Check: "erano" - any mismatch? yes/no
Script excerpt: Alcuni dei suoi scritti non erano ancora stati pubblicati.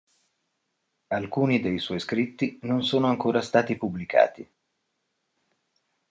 yes